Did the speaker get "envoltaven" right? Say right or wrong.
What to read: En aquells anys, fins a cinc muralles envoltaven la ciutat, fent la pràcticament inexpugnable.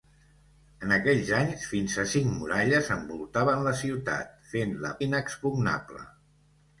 right